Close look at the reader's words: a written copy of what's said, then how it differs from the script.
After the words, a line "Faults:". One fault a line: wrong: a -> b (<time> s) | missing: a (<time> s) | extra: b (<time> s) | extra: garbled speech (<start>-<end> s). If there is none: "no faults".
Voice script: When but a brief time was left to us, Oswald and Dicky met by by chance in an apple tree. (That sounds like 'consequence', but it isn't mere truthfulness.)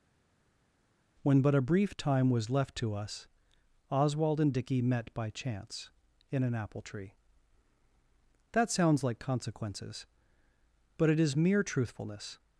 When but a brief time was left to us, Oswald and Dicky met by chance in an apple tree. (That sounds like 'consequences', but it is mere truthfulness.)
Faults:
missing: by (5.3 s)
wrong: consequence -> consequences (9.2 s)
wrong: isn't -> is (11.2 s)